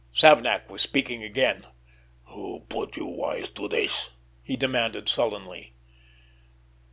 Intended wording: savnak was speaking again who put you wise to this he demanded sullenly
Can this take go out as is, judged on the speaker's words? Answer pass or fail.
pass